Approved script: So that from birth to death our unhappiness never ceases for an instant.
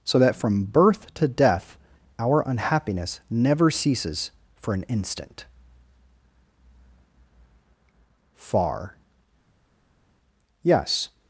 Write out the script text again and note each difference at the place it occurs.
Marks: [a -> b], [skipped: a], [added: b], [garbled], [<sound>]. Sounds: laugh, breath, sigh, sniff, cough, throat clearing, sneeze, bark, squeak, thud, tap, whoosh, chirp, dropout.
So that from birth to death our unhappiness never ceases for an instant. [added: Far Yes]